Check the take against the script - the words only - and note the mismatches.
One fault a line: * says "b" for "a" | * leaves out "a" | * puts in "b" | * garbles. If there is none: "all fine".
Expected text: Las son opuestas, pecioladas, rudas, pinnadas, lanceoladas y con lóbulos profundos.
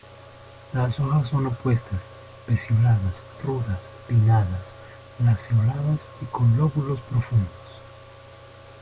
* puts in "hojas"